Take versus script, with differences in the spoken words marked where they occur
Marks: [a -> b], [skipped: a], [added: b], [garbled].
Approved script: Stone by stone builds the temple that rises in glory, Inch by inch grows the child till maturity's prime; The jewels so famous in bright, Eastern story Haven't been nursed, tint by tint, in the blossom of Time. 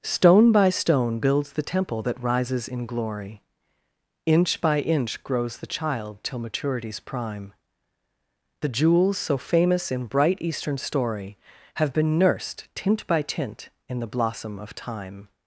Stone by stone builds the temple that rises in glory, Inch by inch grows the child till maturity's prime; The jewels so famous in bright, Eastern story [Haven't -> Have] been nursed, tint by tint, in the blossom of Time.